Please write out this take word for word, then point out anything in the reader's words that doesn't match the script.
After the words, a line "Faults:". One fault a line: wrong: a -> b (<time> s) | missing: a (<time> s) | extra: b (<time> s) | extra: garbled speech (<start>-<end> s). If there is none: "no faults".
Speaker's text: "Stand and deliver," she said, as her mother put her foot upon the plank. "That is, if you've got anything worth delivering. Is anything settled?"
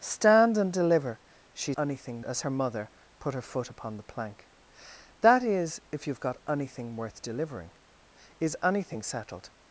"Stand and deliver," she anything, as her mother put her foot upon the plank. "That is, if you've got anything worth delivering. Is anything settled?"
Faults:
wrong: said -> anything (1.8 s)